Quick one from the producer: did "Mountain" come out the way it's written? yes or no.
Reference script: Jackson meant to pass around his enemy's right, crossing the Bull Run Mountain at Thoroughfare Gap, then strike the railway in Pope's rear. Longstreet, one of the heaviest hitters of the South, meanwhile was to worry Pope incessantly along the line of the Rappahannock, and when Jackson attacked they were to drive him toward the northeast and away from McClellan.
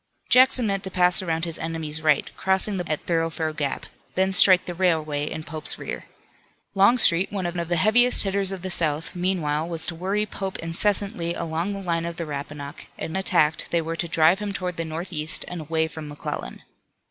no